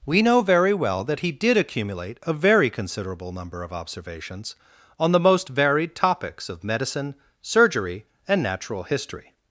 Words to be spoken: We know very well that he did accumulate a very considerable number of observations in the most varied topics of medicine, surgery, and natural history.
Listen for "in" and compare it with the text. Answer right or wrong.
wrong